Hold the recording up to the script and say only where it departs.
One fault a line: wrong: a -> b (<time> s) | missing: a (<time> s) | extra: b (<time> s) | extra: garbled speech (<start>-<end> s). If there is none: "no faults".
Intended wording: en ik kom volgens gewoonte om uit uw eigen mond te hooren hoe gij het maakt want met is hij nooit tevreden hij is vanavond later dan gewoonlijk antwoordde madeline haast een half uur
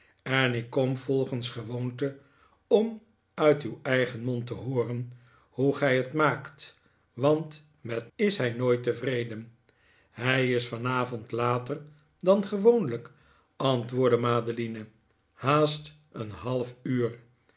no faults